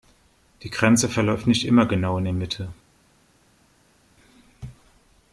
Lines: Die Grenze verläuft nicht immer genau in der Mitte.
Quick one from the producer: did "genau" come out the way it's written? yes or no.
yes